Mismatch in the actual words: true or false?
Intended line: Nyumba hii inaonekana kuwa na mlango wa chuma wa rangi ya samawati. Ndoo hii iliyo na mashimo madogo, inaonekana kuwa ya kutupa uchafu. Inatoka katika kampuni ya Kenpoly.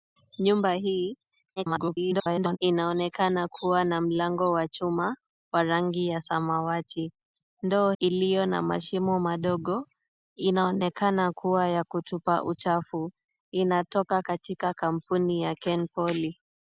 true